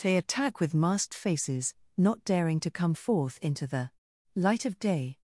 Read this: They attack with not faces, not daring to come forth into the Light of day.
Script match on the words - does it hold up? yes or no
no